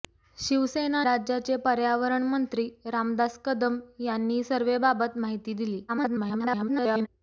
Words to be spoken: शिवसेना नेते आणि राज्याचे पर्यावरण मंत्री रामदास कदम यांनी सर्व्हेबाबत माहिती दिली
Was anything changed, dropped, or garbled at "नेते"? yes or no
yes